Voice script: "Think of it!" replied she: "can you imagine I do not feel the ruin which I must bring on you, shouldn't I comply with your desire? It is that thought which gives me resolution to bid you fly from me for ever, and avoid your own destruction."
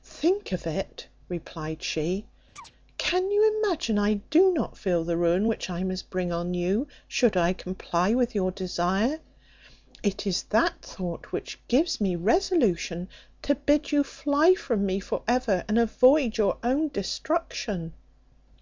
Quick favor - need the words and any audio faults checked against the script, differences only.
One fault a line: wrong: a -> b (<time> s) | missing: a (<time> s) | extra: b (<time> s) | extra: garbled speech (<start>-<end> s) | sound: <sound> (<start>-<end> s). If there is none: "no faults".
sound: chirp (2.6-2.7 s)
wrong: shouldn't -> should (7.1 s)